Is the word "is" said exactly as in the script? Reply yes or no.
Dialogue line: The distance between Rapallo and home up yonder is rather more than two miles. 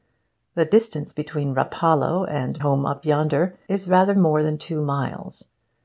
yes